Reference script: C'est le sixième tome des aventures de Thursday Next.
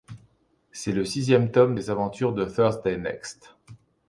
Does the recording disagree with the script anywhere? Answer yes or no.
no